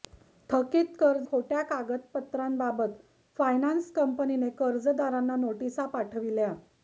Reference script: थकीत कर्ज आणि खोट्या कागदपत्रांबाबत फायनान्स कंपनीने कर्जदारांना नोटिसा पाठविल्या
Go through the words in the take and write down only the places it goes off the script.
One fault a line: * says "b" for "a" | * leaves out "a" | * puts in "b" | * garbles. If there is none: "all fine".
* leaves out "आणि"